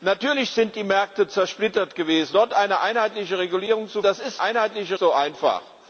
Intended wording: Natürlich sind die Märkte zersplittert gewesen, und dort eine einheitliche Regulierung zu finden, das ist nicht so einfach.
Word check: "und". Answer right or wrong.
wrong